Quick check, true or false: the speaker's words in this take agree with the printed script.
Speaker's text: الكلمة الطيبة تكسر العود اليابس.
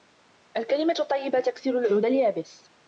true